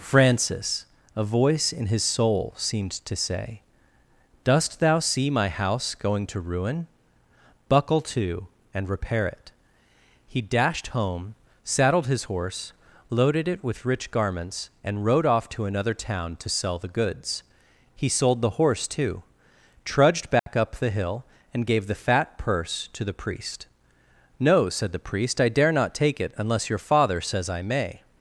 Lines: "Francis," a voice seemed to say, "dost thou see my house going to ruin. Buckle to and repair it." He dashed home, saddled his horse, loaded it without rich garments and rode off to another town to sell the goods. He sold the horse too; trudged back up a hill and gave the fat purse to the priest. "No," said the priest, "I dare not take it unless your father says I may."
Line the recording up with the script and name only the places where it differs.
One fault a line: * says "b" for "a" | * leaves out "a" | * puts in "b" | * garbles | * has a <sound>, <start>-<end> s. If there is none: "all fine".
* puts in "in his soul"
* says "with" for "without"
* has a dropout, 20.4-20.5 s
* says "the" for "a"